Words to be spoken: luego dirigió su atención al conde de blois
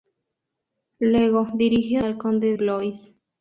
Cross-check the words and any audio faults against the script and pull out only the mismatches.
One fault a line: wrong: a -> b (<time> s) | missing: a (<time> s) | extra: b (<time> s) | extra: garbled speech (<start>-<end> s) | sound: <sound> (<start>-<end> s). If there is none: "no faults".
missing: su atención (2.0 s)
missing: de (2.5 s)